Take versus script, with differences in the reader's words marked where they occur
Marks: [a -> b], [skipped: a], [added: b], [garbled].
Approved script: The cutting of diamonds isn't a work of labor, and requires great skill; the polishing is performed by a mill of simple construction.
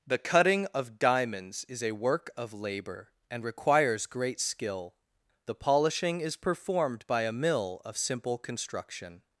The cutting of diamonds [isn't -> is] a work of labor, and requires great skill; the polishing is performed by a mill of simple construction.